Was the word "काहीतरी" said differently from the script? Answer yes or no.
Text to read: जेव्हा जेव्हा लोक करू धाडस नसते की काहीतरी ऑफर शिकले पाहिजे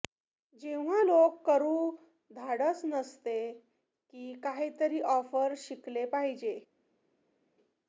no